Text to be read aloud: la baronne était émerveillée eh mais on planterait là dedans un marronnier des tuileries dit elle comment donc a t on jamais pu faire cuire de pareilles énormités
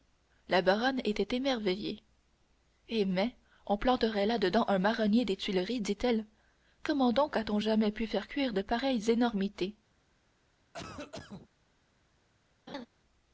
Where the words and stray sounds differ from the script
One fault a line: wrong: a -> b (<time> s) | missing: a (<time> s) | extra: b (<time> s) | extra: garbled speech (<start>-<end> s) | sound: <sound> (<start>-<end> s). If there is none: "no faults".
sound: cough (10.7-11.5 s)
sound: laugh (12.7-12.9 s)